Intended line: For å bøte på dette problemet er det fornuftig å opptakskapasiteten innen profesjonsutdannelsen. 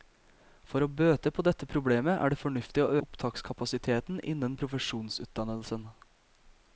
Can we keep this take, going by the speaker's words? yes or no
yes